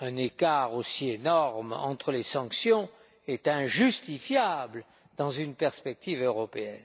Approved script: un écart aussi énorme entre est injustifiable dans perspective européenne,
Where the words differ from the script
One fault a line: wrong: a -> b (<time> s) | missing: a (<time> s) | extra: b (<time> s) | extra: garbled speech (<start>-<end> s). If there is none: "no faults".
extra: les sanctions (2.1 s)
extra: une (5.3 s)